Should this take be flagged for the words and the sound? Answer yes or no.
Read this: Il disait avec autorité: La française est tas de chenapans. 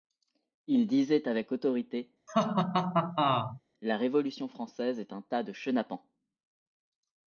yes